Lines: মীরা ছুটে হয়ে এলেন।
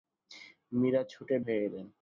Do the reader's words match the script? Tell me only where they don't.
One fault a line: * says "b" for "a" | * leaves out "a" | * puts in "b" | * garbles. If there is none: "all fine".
all fine